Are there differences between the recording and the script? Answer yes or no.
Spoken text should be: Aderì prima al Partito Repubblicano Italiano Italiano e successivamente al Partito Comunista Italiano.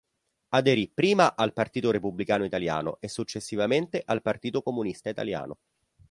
yes